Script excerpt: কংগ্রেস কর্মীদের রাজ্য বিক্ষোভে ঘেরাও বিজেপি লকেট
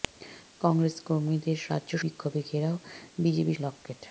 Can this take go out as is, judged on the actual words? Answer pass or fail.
pass